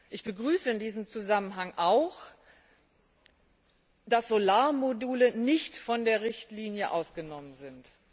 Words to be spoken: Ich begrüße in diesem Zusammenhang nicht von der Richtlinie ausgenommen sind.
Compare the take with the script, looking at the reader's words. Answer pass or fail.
fail